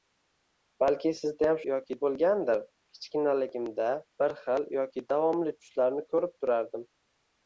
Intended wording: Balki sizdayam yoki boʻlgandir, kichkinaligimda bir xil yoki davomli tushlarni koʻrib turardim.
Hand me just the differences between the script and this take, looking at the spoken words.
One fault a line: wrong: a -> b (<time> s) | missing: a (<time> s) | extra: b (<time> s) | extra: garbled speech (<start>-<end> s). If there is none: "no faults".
no faults